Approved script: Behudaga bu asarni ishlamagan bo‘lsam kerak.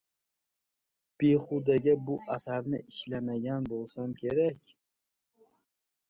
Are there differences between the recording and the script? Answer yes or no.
no